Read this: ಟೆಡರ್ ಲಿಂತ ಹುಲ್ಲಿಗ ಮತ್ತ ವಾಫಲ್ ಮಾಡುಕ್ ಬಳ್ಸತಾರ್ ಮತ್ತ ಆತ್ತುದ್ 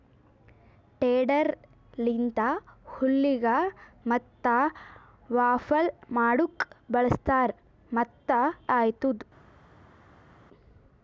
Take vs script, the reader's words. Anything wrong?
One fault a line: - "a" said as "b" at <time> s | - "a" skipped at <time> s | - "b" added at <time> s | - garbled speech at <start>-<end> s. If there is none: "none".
none